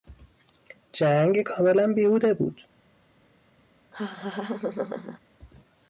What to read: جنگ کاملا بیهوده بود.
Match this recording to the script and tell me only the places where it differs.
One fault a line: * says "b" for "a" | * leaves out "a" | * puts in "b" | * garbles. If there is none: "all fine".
all fine